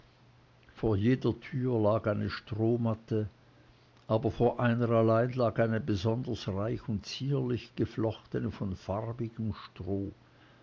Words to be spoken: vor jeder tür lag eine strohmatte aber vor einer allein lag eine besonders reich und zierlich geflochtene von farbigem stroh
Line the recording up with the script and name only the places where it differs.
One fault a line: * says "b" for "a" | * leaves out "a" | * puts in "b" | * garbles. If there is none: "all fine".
all fine